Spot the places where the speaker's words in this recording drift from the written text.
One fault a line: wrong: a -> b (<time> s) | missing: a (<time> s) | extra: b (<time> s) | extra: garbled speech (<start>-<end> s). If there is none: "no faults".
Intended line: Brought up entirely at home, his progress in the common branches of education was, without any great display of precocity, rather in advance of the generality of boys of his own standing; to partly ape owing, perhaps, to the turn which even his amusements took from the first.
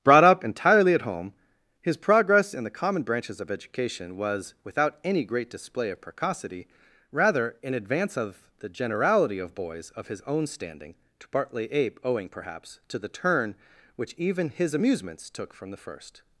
no faults